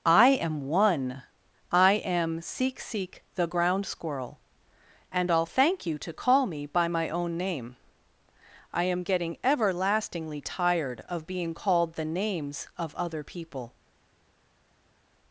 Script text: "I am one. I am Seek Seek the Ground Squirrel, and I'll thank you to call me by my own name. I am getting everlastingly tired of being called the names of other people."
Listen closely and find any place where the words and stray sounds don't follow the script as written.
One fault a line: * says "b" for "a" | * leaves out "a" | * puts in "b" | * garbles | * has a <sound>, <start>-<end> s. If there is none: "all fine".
all fine